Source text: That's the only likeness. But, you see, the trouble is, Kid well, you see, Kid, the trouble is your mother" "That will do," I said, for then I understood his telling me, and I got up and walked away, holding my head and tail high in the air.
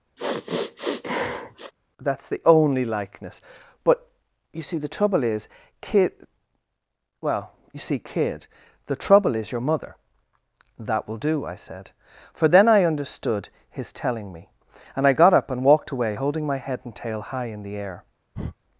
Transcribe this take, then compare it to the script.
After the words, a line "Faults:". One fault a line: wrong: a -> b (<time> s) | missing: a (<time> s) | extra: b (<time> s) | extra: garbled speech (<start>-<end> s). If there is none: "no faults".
That's the only likeness. But, you see, the trouble is, Kid well, you see, Kid, the trouble is your mother" "That will do," I said, for then I understood his telling me, and I got up and walked away, holding my head and tail high in the air.
Faults:
no faults